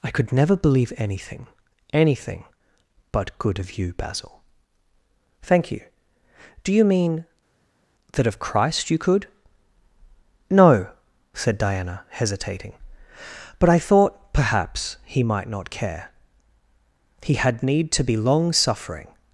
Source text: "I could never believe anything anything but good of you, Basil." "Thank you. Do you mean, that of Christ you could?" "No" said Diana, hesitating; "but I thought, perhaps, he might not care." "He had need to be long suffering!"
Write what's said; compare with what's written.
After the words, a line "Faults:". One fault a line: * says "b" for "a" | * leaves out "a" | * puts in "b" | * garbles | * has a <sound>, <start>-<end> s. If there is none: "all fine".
"I could never believe anything anything but good of you, Basil." "Thank you. Do you mean, that of Christ you could?" "No" said Diana, hesitating; "but I thought, perhaps, he might not care." "He had need to be long suffering!"
Faults:
all fine